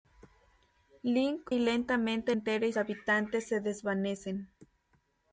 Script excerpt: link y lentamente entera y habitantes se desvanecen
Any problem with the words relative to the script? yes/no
no